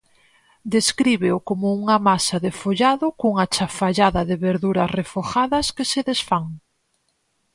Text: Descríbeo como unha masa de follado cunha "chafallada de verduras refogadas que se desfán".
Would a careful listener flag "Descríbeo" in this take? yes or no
no